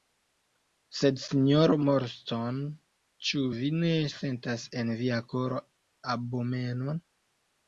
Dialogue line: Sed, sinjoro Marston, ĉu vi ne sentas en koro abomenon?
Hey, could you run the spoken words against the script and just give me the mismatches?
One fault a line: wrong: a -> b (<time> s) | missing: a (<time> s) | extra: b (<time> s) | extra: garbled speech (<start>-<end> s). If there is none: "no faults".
extra: via (5.0 s)